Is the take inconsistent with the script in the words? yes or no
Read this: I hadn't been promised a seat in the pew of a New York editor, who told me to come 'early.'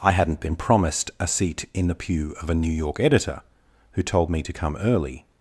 no